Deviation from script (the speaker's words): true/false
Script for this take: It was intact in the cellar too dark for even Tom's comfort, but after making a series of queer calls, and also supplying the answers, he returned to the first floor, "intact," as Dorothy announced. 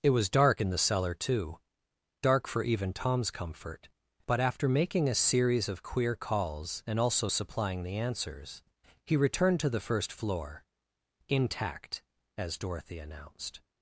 true